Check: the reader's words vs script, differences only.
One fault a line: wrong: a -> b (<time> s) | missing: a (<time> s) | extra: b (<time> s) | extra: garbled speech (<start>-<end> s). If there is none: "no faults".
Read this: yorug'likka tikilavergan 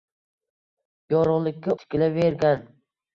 no faults